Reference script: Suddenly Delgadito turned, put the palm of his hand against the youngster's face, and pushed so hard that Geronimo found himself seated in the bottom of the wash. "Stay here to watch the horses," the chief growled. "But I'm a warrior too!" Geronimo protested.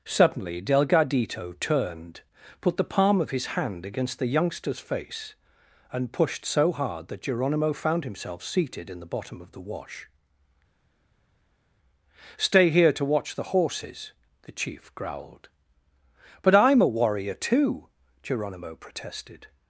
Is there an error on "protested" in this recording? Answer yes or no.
no